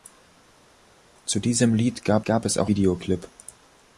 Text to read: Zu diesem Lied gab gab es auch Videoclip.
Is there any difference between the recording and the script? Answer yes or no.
no